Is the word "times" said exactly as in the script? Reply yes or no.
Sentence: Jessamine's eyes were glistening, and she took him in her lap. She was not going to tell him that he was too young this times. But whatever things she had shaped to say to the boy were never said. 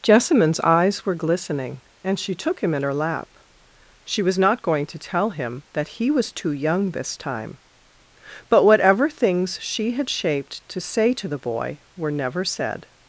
no